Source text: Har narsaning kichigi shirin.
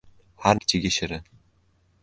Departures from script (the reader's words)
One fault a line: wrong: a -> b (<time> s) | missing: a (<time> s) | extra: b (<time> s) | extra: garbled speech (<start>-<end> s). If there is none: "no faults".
missing: narsaning (0.6 s)